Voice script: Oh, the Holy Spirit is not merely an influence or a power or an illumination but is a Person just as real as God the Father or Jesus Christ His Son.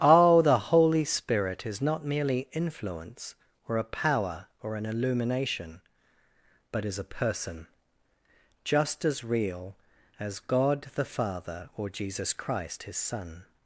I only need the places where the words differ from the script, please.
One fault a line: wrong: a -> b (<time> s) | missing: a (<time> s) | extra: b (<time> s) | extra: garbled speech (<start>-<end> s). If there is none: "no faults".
missing: an (2.5 s)